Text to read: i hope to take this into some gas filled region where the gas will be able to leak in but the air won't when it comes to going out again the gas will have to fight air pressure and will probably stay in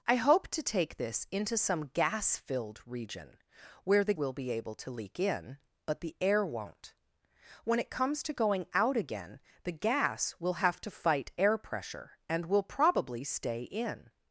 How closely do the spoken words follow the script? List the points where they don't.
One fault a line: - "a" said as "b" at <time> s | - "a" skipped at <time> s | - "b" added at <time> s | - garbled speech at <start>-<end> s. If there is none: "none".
- "gas" skipped at 4.1 s